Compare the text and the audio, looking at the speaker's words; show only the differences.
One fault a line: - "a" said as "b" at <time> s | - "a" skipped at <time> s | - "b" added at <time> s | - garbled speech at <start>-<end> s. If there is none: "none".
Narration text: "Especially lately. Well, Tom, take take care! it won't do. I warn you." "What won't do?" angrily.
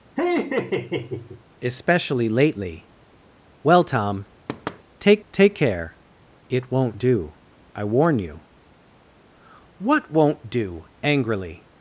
none